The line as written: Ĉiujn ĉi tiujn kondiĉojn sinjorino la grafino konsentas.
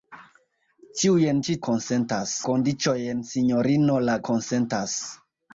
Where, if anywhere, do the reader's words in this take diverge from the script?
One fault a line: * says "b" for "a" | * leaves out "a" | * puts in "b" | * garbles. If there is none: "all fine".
* says "konsentas" for "tiujn"
* leaves out "grafino"